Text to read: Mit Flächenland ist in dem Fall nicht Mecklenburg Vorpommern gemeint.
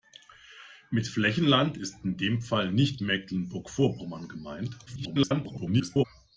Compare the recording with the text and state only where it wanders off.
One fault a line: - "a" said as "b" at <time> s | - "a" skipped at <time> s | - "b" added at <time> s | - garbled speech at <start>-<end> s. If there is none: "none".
- garbled speech at 4.9-6.1 s